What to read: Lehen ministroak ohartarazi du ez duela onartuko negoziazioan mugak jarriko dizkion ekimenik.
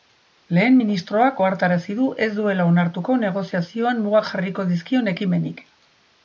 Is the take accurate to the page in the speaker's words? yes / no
yes